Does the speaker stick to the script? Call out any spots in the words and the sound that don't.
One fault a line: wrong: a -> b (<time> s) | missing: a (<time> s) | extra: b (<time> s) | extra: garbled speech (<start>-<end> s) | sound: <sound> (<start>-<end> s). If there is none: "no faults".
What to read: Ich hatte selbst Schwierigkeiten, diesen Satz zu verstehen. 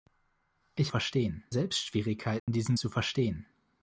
wrong: hatte -> verstehen (0.9 s)
sound: dropout (2.4-2.5 s)
missing: Satz (2.8 s)